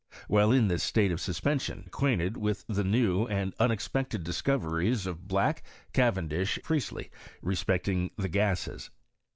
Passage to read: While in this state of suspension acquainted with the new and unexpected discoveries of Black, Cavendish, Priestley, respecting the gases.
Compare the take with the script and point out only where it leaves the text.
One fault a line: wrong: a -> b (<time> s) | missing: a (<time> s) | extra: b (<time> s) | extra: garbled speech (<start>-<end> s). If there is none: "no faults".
no faults